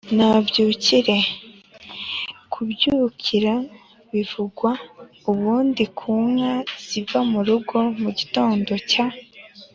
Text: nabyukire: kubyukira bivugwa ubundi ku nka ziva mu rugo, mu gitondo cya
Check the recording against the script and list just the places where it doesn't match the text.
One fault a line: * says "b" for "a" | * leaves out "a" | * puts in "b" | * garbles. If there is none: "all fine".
all fine